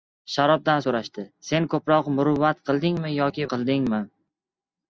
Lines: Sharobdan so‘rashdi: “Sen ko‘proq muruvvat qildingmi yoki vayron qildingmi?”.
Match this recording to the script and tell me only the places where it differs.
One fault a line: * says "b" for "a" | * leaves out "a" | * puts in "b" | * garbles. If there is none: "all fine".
* leaves out "vayron"